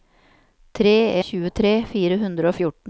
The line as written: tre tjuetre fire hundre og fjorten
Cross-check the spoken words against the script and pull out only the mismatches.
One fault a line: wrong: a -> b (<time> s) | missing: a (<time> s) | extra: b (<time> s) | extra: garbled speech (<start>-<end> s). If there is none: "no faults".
no faults